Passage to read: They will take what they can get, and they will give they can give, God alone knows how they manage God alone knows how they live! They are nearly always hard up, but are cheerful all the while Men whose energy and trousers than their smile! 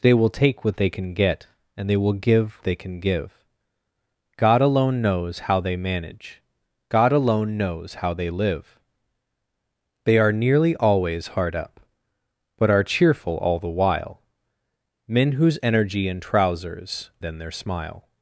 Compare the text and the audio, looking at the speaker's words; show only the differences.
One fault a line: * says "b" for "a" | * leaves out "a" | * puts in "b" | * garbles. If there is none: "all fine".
all fine